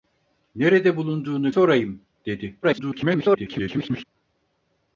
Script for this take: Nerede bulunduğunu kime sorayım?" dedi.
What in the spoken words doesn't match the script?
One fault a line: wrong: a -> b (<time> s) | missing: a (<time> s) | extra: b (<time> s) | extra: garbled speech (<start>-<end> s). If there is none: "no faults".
missing: kime (1.5 s)
extra: garbled speech (2.6-4.0 s)